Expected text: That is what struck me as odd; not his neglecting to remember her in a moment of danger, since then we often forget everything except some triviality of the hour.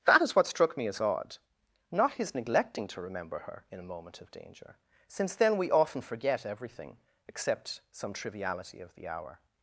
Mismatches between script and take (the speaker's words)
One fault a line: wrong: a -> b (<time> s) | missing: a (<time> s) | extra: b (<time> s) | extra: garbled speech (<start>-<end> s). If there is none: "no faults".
no faults